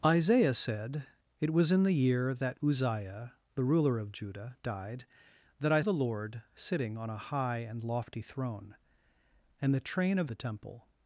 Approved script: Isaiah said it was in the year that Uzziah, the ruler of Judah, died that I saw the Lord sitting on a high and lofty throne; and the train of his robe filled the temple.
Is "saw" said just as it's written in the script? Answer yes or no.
no